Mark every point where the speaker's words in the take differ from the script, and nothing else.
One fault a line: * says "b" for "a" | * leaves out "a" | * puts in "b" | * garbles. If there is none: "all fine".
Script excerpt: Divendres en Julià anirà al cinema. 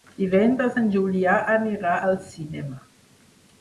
all fine